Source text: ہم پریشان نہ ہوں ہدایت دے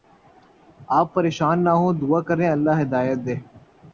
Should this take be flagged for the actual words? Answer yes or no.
yes